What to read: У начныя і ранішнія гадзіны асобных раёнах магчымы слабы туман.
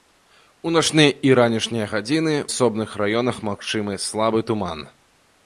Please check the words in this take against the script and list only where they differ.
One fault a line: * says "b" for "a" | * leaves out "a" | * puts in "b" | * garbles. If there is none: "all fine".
all fine